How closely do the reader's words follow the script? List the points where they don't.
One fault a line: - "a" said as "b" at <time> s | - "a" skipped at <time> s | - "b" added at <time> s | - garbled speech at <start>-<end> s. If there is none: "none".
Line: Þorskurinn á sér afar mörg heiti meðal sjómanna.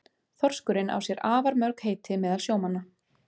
none